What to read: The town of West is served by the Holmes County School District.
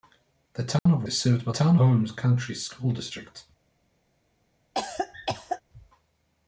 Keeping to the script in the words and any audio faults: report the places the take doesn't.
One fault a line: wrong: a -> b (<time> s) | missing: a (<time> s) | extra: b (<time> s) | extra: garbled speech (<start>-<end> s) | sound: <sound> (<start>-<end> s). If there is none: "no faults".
sound: dropout (0.8-0.9 s)
missing: West (1.0 s)
wrong: the -> town (1.5 s)
sound: cough (4.7-5.6 s)